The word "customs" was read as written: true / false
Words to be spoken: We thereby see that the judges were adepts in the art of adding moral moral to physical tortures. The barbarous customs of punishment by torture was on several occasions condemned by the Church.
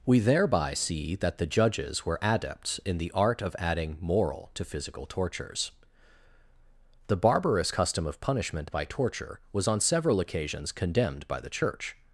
false